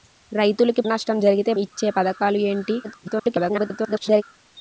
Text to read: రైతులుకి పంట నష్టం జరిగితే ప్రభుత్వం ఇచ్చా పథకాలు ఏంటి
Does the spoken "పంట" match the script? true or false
false